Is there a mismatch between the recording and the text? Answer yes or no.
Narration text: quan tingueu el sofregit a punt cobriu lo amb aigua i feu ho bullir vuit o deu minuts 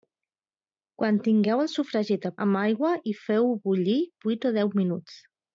yes